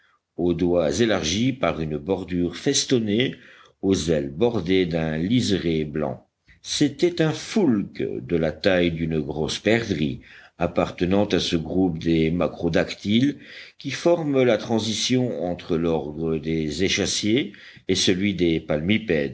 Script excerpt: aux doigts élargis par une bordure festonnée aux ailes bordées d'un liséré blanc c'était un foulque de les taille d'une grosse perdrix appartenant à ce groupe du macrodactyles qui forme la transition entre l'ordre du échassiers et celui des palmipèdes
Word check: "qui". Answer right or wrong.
right